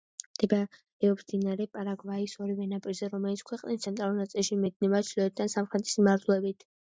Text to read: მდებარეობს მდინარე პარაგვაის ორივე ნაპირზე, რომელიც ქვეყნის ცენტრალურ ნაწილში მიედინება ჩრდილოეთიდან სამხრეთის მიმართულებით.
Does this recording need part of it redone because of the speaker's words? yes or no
no